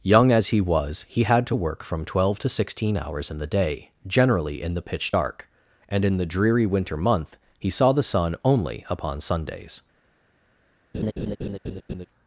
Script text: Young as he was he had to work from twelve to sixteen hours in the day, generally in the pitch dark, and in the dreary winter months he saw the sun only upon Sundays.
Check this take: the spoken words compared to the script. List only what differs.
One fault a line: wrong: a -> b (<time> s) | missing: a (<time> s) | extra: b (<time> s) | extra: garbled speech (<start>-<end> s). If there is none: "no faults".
wrong: months -> month (7.0 s)